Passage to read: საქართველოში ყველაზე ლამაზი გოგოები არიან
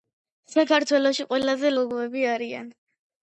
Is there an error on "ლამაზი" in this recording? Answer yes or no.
yes